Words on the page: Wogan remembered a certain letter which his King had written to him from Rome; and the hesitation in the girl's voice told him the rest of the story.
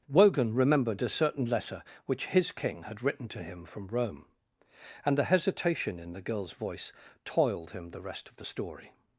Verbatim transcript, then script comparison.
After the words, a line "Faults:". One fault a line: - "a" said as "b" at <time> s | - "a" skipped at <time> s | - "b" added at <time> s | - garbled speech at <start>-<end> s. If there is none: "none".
Wogan remembered a certain letter which his King had written to him from Rome; and the hesitation in the girl's voice toiled him the rest of the story.
Faults:
- "told" said as "toiled" at 7.2 s